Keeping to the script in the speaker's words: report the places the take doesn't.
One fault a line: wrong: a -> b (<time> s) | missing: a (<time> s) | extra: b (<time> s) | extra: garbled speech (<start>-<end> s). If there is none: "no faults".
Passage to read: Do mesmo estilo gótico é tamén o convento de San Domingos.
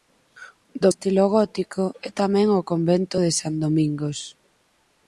missing: mesmo (0.9 s)